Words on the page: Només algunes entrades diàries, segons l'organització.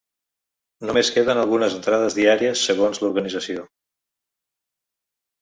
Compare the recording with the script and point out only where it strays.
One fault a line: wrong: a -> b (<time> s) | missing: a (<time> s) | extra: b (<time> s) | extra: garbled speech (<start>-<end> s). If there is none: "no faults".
extra: queden (1.2 s)